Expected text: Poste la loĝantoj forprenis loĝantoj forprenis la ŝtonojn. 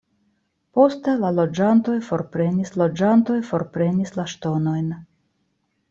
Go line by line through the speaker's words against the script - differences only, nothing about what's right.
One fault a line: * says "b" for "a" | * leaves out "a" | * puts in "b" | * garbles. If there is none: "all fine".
all fine